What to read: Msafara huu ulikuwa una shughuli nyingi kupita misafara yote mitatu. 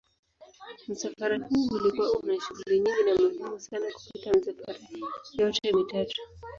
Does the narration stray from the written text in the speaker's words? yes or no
yes